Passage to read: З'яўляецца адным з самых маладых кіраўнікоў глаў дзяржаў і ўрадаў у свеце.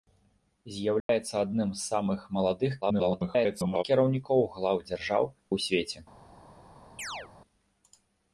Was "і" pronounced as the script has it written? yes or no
no